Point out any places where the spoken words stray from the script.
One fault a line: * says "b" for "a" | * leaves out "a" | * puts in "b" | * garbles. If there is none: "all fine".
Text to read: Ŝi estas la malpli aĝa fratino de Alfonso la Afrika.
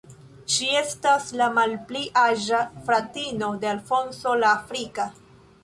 all fine